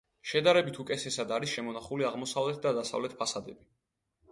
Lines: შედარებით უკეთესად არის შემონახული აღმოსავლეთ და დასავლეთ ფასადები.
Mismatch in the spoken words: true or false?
false